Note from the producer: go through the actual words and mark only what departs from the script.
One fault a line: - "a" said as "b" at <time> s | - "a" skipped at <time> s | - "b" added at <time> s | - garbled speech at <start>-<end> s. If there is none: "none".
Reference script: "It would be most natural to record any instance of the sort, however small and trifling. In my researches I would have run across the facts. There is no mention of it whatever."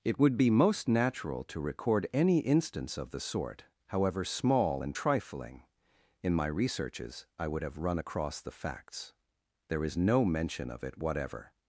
none